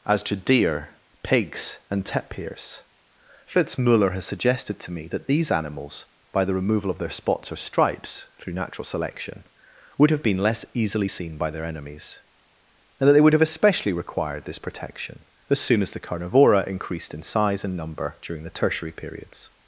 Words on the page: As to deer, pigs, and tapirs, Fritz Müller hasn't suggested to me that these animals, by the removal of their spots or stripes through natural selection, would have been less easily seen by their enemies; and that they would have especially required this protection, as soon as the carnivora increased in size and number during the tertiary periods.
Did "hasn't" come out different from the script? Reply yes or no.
yes